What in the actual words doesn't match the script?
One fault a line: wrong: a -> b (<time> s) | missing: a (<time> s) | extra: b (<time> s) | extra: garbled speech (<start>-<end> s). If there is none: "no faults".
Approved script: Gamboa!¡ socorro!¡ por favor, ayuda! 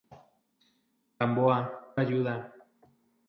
missing: socorro por favor (1.9 s)